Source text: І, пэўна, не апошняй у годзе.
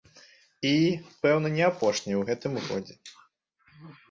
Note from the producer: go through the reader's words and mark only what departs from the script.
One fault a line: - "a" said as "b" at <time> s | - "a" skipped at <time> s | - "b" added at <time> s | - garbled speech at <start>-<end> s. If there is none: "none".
- "гэтым" added at 2.3 s